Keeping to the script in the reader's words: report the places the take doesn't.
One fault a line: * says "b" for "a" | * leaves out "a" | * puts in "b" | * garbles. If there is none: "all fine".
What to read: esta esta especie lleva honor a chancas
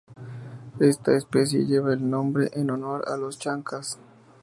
* leaves out "esta"
* puts in "el nombre en"
* puts in "los"